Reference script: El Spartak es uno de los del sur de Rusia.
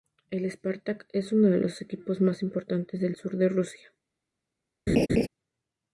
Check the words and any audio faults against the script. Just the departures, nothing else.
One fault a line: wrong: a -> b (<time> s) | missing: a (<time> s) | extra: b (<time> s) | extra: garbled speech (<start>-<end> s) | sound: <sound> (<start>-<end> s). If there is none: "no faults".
extra: equipos más importantes (1.8 s)
sound: laugh (4.9-5.3 s)